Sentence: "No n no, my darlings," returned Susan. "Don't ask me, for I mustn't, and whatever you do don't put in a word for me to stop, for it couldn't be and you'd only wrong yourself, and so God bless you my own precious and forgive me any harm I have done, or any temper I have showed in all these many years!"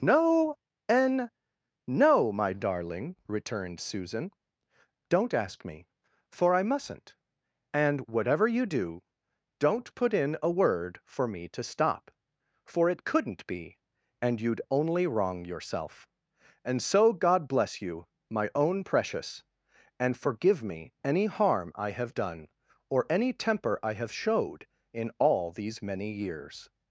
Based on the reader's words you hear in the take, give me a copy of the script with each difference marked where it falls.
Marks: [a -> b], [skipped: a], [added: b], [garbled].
"No n no, my [darlings," -> darling] returned Susan. "Don't ask me, for I mustn't, and whatever you do don't put in a word for me to stop, for it couldn't be and you'd only wrong yourself, and so God bless you my own precious and forgive me any harm I have done, or any temper I have showed in all these many years!"